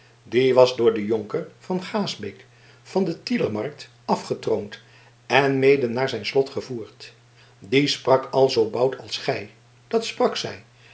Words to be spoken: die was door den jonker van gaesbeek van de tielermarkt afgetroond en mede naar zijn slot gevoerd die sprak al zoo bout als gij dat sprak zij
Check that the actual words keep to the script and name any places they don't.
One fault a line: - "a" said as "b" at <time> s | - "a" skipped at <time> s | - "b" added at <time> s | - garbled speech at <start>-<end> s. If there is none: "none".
none